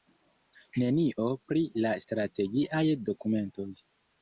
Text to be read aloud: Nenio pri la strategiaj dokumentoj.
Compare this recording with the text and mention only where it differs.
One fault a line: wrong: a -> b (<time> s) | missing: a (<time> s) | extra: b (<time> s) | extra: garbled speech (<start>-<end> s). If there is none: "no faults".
no faults